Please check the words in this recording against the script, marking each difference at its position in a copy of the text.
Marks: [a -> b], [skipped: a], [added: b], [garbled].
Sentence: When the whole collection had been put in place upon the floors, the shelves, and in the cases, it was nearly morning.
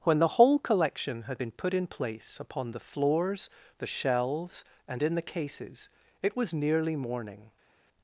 When the whole collection had been put in place upon the floors, the shelves, and in the cases, it was nearly morning.